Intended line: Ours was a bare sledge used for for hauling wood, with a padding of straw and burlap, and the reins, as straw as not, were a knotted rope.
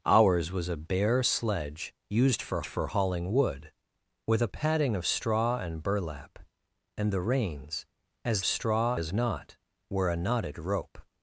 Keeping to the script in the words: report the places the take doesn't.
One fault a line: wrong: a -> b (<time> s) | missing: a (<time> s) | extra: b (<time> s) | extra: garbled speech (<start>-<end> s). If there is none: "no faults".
no faults